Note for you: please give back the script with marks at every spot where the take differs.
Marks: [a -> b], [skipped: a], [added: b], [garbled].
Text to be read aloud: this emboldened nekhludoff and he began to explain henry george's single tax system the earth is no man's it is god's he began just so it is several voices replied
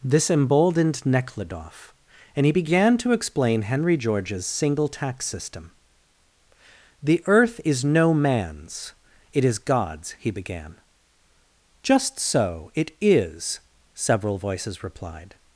this emboldened nekhludoff and he began to explain henry george's single tax system the earth is no man's it is god's he began just so it is several voices replied